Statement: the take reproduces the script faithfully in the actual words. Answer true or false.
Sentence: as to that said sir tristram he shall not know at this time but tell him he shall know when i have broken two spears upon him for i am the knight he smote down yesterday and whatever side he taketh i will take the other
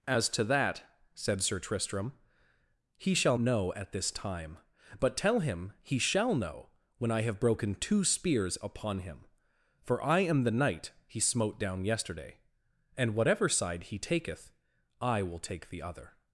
false